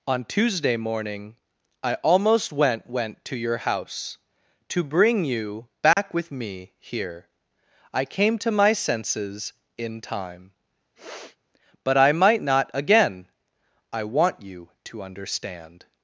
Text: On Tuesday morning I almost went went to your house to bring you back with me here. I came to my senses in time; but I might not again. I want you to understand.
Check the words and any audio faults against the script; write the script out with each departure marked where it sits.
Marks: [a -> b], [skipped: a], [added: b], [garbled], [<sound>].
On Tuesday morning I almost went went to your house to bring you back [dropout] with me here. I came to my senses in time; [sniff] but I might not again. I want you to understand.